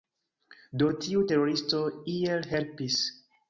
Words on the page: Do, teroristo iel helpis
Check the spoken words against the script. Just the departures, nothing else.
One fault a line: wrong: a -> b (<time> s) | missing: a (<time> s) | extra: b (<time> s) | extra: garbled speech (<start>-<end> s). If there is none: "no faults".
extra: tiu (1.0 s)